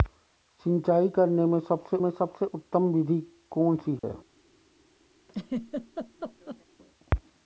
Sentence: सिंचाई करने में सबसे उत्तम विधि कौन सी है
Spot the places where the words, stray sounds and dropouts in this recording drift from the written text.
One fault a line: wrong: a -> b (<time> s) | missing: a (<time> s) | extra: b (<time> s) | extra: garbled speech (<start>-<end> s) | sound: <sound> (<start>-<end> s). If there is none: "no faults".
extra: में सबसे (2.0 s)
sound: dropout (4.0-4.0 s)
sound: laugh (5.3-6.6 s)